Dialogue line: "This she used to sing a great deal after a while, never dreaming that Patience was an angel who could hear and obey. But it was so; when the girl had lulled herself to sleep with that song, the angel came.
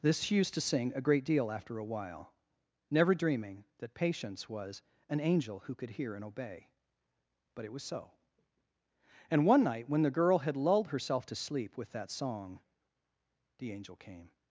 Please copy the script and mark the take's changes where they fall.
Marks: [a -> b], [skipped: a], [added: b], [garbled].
"This she used to sing a great deal after a while, never dreaming that Patience was an angel who could hear and obey. But it was so; [added: and one night] when the girl had lulled herself to sleep with that song, the angel came.